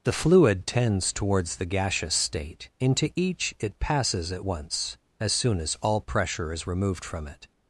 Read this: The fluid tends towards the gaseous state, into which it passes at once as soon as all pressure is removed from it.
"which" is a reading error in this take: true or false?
true